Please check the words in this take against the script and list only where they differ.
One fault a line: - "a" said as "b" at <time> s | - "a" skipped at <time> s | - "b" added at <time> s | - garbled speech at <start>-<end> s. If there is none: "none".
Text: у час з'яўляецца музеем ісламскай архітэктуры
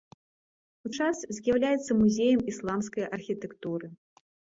none